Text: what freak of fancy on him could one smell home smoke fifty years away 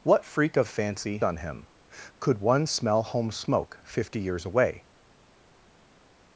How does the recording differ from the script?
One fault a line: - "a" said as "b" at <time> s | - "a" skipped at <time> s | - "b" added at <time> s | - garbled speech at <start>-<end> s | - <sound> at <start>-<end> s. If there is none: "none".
none